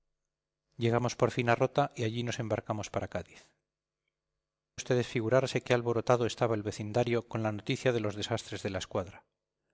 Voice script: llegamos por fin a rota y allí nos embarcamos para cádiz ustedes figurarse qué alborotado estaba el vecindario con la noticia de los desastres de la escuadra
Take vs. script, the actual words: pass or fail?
pass